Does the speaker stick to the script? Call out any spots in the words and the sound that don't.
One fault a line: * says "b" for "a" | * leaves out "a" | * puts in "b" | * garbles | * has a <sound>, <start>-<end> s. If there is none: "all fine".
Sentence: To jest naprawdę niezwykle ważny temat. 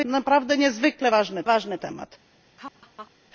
* leaves out "jest"
* puts in "ważny"
* has a laugh, 2.6-3.1 s